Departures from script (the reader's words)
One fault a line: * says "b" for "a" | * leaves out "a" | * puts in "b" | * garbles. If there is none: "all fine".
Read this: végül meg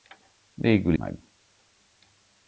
all fine